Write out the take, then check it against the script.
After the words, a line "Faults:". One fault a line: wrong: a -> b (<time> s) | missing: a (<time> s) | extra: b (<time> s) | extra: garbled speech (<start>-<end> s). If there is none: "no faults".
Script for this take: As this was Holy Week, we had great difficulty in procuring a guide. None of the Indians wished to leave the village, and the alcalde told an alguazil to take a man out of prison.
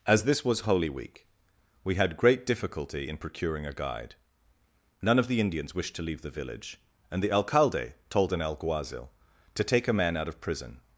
As this was Holy Week, we had great difficulty in procuring a guide. None of the Indians wished to leave the village, and the alcalde told an alguazil to take a man out of prison.
Faults:
no faults